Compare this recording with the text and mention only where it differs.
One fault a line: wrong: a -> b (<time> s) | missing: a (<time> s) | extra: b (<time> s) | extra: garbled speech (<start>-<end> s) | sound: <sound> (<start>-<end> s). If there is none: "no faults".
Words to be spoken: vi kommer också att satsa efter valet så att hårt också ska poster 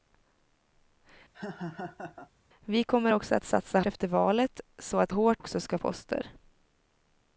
sound: laugh (1.3-2.3 s)